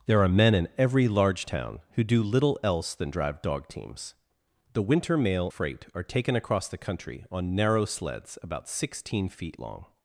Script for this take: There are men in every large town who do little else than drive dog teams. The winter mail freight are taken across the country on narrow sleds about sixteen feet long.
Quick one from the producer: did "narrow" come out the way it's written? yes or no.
yes